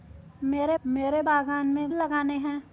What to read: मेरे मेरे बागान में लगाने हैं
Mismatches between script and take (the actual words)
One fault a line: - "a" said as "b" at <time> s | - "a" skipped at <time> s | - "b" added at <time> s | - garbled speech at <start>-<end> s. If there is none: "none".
none